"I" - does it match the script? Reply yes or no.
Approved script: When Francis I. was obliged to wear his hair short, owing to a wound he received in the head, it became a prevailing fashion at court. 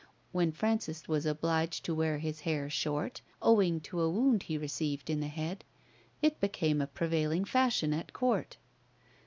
no